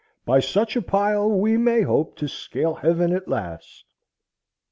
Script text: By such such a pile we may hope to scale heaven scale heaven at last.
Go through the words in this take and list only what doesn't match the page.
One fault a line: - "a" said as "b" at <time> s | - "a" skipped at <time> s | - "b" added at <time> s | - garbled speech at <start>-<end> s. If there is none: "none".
- "such" skipped at 0.8 s
- "scale heaven" skipped at 3.1 s